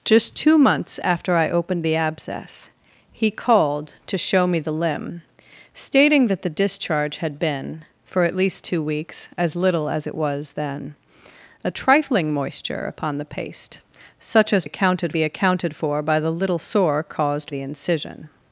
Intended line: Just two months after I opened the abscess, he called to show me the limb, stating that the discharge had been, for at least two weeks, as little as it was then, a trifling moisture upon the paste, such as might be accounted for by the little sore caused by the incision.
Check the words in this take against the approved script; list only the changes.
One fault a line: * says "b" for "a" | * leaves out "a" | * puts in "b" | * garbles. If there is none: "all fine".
* says "accounted" for "might"
* leaves out "by"